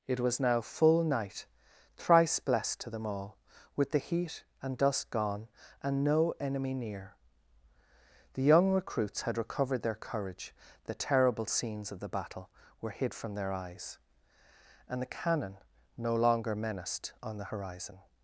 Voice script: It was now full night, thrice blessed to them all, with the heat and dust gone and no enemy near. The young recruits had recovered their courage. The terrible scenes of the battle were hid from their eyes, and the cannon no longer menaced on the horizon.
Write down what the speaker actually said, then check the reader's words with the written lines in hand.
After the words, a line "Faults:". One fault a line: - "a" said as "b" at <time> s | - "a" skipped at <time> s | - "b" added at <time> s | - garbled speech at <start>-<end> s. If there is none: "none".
It was now full night, thrice blessed to them all, with the heat and dust gone and no enemy near. The young recruits had recovered their courage. The terrible scenes of the battle were hid from their eyes, and the cannon no longer menaced on the horizon.
Faults:
none